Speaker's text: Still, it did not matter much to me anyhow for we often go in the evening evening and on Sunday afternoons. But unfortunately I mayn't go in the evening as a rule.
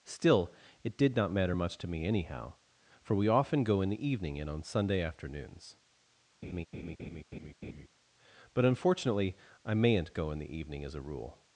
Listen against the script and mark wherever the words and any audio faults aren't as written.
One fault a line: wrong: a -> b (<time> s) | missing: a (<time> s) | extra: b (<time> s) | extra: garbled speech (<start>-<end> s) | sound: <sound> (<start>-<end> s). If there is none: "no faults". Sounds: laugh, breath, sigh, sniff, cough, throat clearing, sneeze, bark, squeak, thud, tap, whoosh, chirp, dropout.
missing: evening (4.4 s)
sound: laugh (6.4-7.9 s)